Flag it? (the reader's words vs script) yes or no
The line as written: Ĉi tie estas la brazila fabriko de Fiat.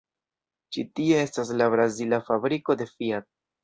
no